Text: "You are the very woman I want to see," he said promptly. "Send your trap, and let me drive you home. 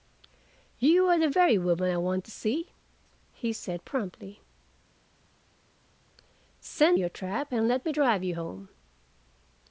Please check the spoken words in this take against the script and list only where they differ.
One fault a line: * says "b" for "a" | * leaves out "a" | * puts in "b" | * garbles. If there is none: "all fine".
all fine